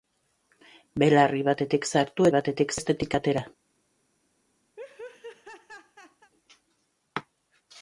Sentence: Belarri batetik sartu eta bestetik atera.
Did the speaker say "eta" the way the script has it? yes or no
no